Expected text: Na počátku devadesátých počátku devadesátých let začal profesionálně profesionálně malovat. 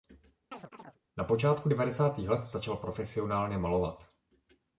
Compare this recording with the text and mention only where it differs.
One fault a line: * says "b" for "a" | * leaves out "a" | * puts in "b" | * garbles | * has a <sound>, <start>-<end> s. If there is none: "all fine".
* has a chirp, 0.5-1.0 s
* leaves out "počátku devadesátých"
* leaves out "profesionálně"